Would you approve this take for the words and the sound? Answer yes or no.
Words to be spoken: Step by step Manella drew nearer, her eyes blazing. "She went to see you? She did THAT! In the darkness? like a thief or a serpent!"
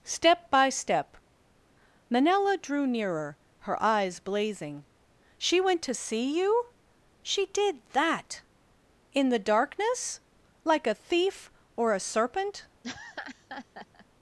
no